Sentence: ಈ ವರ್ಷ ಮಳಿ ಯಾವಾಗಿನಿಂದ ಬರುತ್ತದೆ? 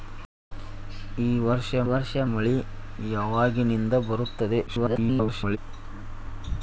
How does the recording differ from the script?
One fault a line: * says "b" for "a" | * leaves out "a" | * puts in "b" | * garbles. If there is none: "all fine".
* puts in "ವರ್ಷ"
* garbles